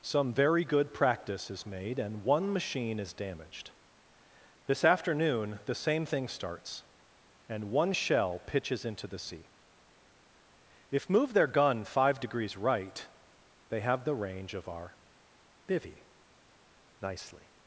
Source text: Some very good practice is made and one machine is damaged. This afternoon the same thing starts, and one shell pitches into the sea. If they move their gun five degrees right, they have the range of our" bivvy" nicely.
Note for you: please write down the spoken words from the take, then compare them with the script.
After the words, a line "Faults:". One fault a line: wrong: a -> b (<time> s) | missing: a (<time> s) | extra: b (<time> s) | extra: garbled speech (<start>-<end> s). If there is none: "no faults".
Some very good practice is made and one machine is damaged. This afternoon the same thing starts, and one shell pitches into the sea. If move their gun five degrees right, they have the range of our" bivvy" nicely.
Faults:
missing: they (11.1 s)